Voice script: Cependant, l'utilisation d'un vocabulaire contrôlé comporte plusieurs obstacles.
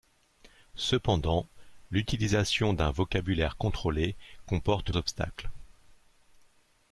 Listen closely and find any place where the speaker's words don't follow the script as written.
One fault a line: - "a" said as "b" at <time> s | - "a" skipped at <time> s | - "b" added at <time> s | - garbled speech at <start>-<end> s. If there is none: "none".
- "plusieurs" skipped at 4.9 s